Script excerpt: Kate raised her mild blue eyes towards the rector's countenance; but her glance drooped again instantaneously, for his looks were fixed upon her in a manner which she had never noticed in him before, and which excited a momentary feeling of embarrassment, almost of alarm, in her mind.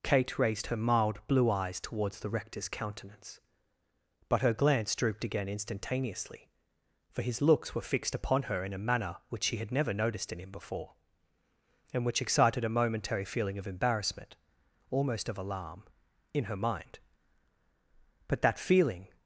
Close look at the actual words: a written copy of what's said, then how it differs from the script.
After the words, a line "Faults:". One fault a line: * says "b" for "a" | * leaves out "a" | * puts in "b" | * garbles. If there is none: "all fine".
Kate raised her mild blue eyes towards the rector's countenance; but her glance drooped again instantaneously, for his looks were fixed upon her in a manner which she had never noticed in him before, and which excited a momentary feeling of embarrassment, almost of alarm, in her mind. But that feeling
Faults:
* puts in "But that feeling"